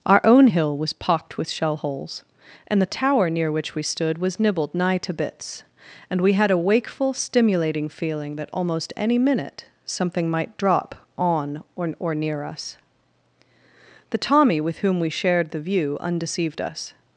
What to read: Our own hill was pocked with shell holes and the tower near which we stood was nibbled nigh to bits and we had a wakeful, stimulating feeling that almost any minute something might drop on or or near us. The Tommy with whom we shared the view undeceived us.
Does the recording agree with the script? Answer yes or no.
yes